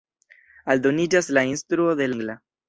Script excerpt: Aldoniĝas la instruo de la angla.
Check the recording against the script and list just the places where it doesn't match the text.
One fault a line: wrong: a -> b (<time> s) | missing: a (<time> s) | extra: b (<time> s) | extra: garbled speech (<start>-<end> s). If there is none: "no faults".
missing: la (2.1 s)